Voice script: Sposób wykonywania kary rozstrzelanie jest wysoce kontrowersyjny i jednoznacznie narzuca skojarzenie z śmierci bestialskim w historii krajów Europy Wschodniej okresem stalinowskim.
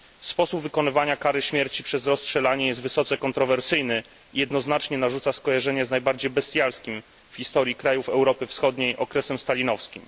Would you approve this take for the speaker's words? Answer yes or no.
no